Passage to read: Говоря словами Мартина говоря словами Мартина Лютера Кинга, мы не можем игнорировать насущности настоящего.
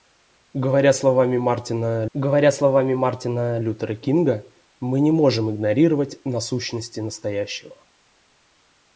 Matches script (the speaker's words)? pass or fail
pass